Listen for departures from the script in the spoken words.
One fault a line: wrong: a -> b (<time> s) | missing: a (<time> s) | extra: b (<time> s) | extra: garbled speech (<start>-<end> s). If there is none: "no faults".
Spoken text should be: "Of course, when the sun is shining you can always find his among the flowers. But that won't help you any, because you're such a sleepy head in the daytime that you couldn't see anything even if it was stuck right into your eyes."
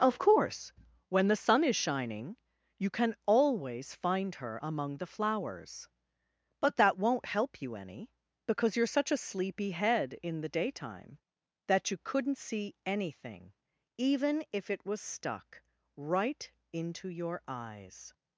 wrong: his -> her (4.4 s)